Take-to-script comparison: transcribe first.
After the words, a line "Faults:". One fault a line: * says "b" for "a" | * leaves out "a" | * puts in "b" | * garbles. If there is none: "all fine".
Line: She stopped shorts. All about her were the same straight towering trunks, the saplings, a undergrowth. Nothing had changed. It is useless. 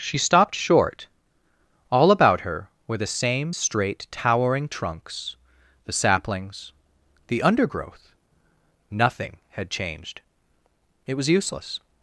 She stopped short. All about her were the same straight towering trunks, the saplings, the undergrowth. Nothing had changed. It was useless.
Faults:
* says "short" for "shorts"
* says "the" for "a"
* says "was" for "is"